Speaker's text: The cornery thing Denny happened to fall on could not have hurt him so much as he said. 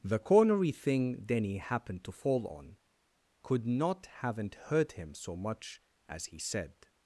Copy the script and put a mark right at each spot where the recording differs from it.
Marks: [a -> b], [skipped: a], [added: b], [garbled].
The cornery thing Denny happened to fall on could not [have -> haven't] hurt him so much as he said.